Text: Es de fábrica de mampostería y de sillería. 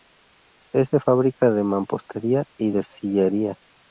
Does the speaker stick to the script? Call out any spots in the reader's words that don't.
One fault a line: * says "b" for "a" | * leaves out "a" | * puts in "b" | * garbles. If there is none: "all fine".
all fine